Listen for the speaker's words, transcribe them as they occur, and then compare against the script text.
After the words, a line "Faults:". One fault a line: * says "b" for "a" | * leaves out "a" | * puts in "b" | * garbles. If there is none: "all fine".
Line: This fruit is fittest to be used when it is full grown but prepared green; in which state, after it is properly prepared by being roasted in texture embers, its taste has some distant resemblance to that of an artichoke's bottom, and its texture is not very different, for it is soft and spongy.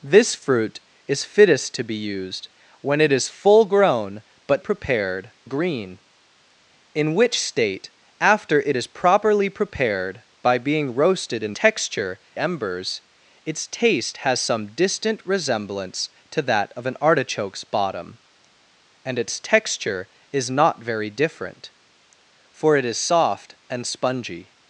This fruit is fittest to be used when it is full grown but prepared green; in which state, after it is properly prepared by being roasted in texture embers, its taste has some distant resemblance to that of an artichoke's bottom, and its texture is not very different, for it is soft and spongy.
Faults:
all fine